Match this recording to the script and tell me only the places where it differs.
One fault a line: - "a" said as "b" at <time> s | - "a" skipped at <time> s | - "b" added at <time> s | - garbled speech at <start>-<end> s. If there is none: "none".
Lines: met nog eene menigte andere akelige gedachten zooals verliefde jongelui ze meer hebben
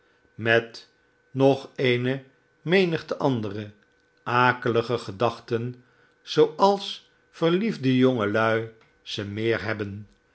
none